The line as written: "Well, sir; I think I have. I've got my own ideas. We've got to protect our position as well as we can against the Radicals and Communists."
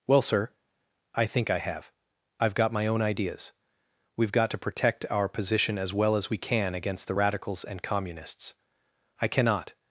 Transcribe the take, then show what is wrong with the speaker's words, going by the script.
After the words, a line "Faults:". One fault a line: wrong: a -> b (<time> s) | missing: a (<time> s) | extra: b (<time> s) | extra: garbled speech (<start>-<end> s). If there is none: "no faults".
"Well, sir; I think I have. I've got my own ideas. We've got to protect our position as well as we can against the Radicals and Communists." "I cannot
Faults:
extra: I cannot (9.2 s)